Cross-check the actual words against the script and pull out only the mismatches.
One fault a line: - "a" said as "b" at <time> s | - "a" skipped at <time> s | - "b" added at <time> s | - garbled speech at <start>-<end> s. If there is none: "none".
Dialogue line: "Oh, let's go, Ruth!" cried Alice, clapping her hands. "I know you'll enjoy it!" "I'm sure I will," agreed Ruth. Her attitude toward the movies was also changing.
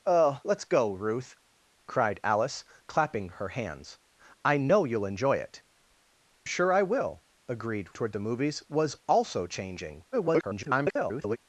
- "I'm" skipped at 5.6 s
- "Ruth Her attitude" skipped at 8.0 s
- garbled speech at 10.1-11.4 s